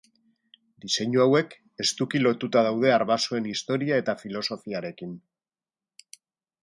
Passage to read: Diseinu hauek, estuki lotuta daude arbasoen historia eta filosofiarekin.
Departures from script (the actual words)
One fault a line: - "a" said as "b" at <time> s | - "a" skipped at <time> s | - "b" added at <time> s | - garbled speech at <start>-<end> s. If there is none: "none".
none